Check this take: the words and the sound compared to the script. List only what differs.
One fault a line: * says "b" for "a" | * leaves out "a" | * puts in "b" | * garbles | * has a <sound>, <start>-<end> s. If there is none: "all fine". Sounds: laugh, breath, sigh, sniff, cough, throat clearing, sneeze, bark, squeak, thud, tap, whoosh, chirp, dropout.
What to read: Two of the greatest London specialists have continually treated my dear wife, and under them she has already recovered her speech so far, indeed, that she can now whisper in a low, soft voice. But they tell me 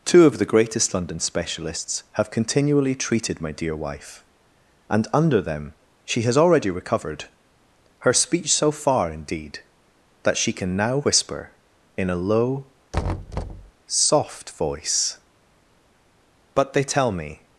* has a thud, 12.9-13.7 s